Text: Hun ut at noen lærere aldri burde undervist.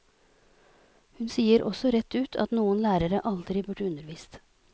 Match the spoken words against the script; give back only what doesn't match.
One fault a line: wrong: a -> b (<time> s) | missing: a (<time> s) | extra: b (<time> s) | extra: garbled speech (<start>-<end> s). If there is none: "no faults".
extra: sier også rett (1.3 s)